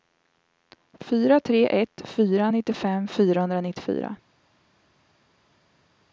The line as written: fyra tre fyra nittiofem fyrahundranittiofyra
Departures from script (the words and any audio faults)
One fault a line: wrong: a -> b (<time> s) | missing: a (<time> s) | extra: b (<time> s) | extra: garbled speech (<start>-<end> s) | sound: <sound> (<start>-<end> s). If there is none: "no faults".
extra: ett (1.7 s)